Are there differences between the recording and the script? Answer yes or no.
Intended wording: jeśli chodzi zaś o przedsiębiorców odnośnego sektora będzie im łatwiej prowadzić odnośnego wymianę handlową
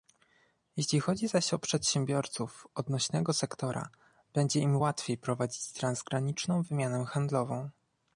yes